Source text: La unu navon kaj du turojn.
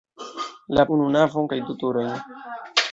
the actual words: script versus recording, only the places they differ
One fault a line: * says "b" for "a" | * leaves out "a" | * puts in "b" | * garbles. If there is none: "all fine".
all fine